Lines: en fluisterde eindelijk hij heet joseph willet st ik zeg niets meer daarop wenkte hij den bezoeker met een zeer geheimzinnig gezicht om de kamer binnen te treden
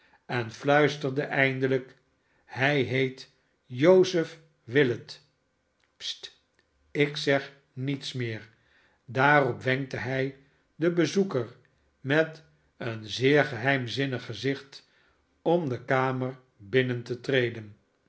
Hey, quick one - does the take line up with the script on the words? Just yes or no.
yes